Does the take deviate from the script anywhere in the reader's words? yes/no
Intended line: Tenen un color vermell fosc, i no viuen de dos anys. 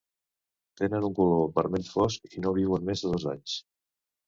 yes